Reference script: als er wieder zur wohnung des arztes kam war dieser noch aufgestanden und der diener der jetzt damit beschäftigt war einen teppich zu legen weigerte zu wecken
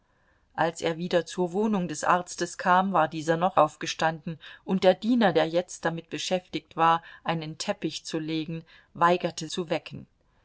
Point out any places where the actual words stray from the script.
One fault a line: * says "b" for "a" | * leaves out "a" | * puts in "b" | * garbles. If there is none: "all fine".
all fine